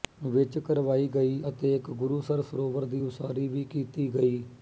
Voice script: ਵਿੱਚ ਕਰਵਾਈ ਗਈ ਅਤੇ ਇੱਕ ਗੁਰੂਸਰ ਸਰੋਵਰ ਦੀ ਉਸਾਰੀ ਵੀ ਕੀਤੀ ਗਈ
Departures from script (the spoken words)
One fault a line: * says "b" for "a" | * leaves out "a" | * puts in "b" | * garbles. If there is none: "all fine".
all fine